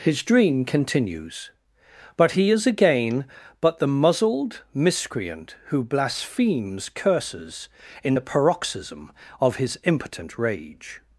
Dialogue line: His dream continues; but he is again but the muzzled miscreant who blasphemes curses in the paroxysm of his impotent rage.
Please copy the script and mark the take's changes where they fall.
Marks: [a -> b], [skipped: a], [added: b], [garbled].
His dream continues; but he is again but the muzzled miscreant who blasphemes curses in the paroxysm of his impotent rage.